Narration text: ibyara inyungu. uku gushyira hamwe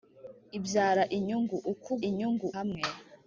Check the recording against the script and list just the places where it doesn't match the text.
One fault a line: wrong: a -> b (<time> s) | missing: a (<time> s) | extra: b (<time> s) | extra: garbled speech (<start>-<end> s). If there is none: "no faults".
wrong: gushyira -> inyungu (2.1 s)